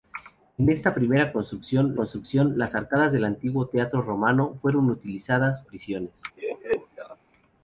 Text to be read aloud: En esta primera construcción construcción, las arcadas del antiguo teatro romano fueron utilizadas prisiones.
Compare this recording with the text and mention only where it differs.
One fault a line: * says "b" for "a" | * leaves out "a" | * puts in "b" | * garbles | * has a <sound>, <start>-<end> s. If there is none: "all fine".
* has a laugh, 6.4-7.2 s